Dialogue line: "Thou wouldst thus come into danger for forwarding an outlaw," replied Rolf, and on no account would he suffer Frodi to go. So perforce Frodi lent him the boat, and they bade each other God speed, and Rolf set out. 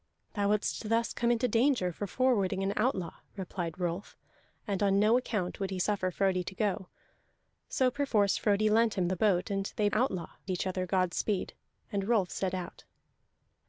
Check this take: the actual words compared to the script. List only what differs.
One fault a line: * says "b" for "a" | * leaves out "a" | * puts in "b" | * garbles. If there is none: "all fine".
* says "outlaw" for "bade"